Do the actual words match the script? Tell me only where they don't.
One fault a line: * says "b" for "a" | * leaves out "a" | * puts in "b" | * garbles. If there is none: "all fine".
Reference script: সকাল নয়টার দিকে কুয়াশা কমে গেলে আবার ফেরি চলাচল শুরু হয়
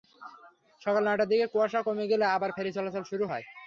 all fine